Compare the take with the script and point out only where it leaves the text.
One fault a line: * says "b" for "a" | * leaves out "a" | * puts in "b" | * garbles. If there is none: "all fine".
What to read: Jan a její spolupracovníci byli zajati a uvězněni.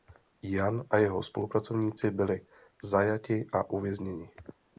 * says "jeho" for "její"